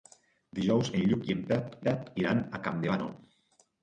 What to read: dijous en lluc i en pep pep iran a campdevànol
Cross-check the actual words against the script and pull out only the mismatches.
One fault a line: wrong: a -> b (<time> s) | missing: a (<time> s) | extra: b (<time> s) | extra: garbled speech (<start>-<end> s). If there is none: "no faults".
no faults